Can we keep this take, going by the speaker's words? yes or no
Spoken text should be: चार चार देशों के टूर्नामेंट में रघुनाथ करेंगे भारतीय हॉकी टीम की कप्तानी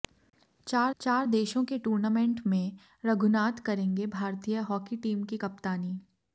yes